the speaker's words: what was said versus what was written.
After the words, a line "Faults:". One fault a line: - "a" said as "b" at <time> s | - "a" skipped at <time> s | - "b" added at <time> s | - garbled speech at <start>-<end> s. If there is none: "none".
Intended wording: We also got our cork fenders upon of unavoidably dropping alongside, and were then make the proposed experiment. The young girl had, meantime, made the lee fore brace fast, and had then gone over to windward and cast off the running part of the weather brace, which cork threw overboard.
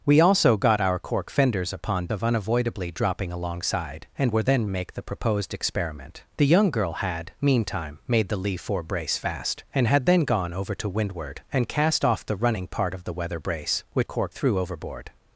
We also got our cork fenders upon of unavoidably dropping alongside, and were then make the proposed experiment. The young girl had, meantime, made the lee fore brace fast, and had then gone over to windward and cast off the running part of the weather brace, which cork threw overboard.
Faults:
none